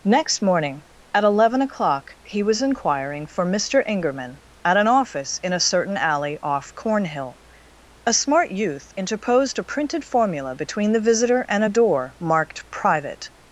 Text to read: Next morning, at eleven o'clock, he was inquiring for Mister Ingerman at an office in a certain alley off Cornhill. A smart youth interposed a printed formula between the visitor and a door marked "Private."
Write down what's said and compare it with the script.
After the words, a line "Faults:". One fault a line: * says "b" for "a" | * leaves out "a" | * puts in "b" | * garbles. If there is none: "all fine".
Next morning, at eleven o'clock, he was inquiring for Mister Ingerman at an office in a certain alley off Cornhill. A smart youth interposed a printed formula between the visitor and a door marked "Private."
Faults:
all fine